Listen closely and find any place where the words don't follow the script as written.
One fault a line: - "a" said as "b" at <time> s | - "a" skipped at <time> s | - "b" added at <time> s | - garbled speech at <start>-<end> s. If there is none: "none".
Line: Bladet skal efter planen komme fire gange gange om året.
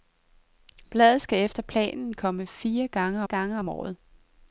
none